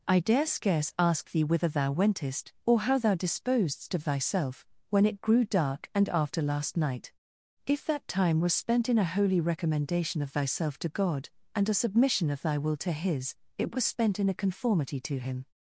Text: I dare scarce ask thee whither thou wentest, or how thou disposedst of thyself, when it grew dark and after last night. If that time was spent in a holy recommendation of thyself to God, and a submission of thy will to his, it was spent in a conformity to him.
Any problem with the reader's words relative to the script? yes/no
no